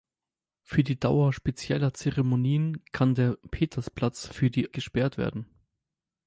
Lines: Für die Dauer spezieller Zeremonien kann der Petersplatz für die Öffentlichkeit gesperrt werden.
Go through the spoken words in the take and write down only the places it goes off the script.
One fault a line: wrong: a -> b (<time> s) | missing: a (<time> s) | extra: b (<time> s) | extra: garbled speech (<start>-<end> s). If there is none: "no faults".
missing: Öffentlichkeit (4.7 s)